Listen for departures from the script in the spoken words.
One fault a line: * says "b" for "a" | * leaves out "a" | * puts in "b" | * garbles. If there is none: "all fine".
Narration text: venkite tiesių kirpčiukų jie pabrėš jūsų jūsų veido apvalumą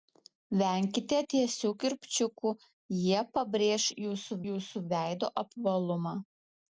all fine